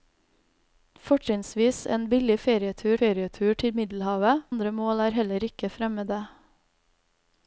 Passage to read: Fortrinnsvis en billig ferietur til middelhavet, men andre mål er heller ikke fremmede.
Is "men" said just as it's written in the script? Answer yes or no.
no